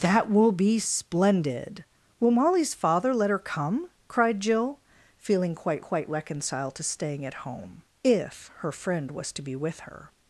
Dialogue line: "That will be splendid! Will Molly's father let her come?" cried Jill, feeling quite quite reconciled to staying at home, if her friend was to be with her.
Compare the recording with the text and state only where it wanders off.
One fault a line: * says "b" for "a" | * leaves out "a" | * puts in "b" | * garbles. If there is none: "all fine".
all fine